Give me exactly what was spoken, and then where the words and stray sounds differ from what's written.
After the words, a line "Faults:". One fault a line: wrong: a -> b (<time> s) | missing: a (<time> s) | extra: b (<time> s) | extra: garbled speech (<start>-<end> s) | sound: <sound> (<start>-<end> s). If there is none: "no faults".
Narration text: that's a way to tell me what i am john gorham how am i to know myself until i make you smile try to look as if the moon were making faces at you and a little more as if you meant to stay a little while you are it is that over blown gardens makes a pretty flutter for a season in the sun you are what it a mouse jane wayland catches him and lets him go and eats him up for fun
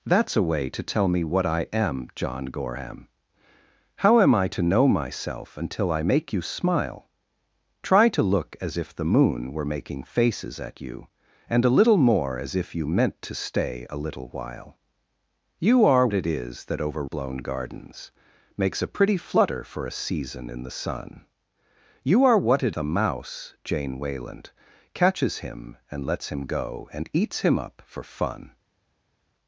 that's a way to tell me what i am john gorham how am i to know myself until i make you smile try to look as if the moon were making faces at you and a little more as if you meant to stay a little while you are it is that over blown gardens makes a pretty flutter for a season in the sun you are what it a mouse jane wayland catches him and lets him go and eats him up for fun
Faults:
no faults